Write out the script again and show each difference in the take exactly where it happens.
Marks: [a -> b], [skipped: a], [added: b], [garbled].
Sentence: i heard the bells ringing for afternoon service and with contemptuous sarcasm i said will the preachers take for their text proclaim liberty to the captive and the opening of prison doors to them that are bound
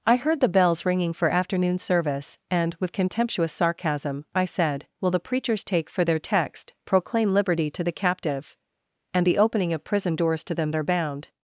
i heard the bells ringing for afternoon service and with contemptuous sarcasm i said will the preachers take for their text proclaim liberty to the captive and the opening of prison doors to them [skipped: that] are bound